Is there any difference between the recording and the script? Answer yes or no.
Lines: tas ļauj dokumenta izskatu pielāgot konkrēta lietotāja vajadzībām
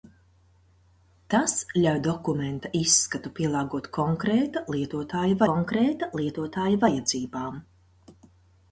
yes